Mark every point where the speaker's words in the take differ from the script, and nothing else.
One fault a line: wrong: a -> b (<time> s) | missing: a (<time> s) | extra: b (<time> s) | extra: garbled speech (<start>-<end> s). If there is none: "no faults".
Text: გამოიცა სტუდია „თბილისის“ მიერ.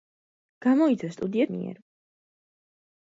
missing: თბილისის (1.5 s)